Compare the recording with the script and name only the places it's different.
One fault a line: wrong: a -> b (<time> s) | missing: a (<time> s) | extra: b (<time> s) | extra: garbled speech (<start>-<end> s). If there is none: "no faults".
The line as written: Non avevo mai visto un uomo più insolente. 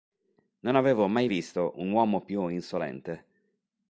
no faults